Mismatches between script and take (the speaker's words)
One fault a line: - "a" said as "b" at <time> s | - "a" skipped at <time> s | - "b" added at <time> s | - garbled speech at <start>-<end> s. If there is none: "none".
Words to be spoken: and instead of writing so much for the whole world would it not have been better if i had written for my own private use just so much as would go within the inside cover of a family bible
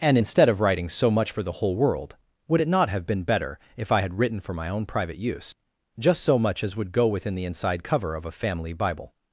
none